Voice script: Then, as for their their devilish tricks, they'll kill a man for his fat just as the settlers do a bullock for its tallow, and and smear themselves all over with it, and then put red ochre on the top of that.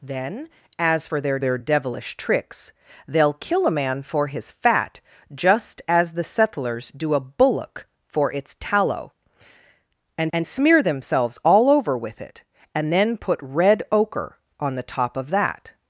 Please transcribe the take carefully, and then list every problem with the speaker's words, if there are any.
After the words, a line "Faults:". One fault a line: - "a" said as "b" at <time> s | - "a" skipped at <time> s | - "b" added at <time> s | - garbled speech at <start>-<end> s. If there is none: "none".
Then, as for their their devilish tricks, they'll kill a man for his fat just as the settlers do a bullock for its tallow, and and smear themselves all over with it, and then put red ochre on the top of that.
Faults:
none